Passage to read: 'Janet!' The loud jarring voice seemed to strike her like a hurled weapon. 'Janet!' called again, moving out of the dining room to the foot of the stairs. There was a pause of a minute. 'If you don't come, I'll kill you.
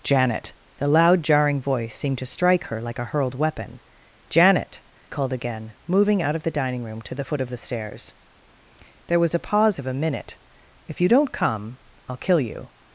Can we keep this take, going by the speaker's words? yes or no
yes